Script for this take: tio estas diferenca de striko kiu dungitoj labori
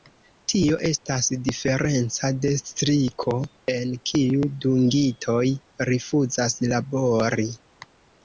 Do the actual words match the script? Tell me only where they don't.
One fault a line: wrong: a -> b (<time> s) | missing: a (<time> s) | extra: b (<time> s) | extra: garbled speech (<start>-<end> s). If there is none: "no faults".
extra: en (3.7 s)
extra: rifuzas (5.9 s)